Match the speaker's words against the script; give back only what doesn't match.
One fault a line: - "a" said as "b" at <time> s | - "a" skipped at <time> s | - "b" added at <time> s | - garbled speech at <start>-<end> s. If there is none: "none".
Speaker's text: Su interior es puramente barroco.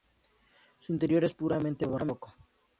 none